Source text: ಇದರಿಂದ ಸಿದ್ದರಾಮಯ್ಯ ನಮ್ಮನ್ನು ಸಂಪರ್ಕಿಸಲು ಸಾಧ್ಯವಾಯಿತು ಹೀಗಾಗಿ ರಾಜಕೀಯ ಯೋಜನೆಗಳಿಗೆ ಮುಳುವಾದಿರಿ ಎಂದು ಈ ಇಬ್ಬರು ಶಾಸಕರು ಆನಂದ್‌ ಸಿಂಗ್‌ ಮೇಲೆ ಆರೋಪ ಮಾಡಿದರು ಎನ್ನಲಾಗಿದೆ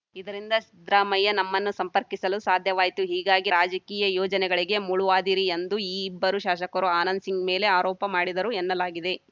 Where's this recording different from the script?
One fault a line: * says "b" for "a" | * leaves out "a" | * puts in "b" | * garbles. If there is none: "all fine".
all fine